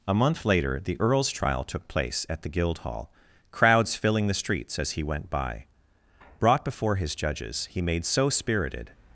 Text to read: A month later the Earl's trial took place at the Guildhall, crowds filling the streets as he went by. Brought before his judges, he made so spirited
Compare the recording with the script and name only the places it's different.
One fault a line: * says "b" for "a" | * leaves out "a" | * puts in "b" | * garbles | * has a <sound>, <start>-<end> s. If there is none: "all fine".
all fine